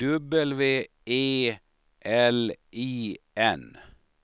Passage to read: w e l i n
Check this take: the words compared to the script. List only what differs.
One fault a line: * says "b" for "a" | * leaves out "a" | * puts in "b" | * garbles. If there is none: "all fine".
all fine